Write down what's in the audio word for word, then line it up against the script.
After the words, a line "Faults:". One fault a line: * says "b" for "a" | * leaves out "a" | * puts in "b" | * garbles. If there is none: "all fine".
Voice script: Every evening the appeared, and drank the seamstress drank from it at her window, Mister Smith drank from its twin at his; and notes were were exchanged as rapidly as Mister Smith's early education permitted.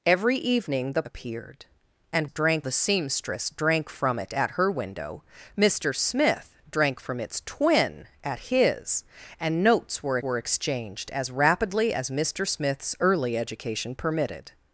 Every evening the appeared, and drank the seamstress drank from it at her window, Mister Smith drank from its twin at his; and notes were were exchanged as rapidly as Mister Smith's early education permitted.
Faults:
all fine